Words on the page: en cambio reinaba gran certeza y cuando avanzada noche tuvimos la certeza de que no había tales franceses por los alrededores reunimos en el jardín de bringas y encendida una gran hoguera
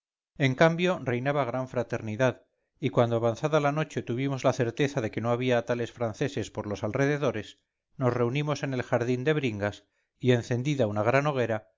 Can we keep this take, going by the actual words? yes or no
no